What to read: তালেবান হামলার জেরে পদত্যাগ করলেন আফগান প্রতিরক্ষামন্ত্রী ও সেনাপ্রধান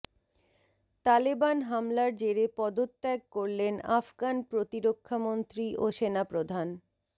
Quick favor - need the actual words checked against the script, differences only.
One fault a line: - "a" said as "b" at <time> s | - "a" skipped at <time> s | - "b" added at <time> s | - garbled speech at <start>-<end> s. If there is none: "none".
none